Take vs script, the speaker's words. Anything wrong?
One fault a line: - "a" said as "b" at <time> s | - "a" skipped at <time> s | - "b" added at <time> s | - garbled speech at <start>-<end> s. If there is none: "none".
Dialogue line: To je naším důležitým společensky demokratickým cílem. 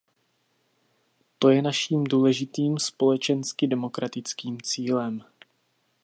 none